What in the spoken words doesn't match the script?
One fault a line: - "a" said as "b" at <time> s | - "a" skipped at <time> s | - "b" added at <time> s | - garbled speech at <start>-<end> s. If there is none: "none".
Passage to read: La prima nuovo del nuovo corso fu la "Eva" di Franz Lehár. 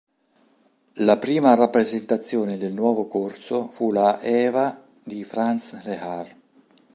- "nuovo" said as "rappresentazione" at 1.5 s